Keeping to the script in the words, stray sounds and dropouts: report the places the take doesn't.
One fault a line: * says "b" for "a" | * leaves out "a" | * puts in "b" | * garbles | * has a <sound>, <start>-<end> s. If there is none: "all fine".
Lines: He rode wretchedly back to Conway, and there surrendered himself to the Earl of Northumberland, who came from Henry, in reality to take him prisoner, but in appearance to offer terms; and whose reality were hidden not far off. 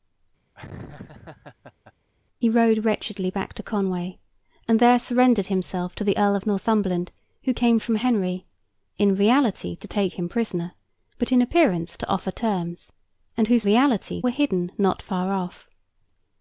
* has a laugh, 0.6-1.9 s